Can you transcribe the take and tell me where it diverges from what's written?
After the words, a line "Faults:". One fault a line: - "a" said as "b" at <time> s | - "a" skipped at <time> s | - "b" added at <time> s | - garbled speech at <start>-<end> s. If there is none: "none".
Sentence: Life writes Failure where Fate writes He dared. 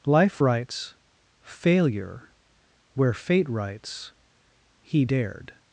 Life writes Failure where Fate writes He dared.
Faults:
none